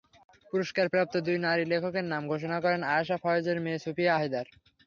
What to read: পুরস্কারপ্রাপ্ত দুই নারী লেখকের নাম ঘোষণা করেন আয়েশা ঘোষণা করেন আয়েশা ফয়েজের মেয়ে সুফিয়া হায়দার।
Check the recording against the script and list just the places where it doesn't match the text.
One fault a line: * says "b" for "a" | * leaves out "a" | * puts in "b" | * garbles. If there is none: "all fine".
* leaves out "ঘোষণা করেন আয়েশা"